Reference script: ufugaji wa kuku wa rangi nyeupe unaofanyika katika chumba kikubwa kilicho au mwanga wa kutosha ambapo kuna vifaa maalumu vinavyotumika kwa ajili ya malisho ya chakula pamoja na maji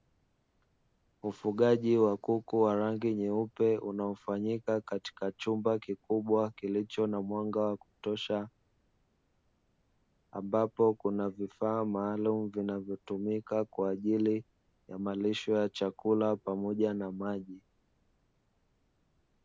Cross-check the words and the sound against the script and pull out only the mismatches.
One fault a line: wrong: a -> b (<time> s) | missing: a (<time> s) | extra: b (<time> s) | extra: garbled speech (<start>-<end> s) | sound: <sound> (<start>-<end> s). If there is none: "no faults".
wrong: au -> na (7.1 s)